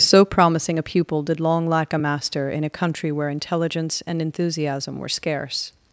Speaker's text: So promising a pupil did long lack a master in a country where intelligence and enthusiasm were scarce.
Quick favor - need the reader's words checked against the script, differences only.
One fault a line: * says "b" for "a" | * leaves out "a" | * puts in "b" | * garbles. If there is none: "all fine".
all fine